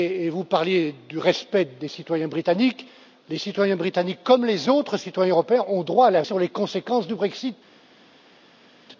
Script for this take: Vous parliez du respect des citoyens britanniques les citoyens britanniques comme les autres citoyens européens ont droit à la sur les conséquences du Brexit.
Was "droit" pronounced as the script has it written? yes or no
yes